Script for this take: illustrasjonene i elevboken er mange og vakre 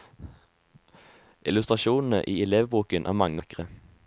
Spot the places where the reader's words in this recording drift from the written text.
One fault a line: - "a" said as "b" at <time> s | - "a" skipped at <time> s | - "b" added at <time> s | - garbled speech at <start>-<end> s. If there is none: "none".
- "og" skipped at 3.4 s